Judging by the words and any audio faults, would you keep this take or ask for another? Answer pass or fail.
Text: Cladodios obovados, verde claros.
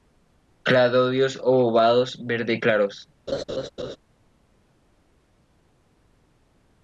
fail